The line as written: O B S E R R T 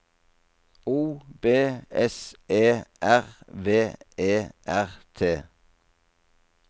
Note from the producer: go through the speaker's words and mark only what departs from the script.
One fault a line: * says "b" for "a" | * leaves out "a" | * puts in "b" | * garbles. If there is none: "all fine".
* puts in "V E"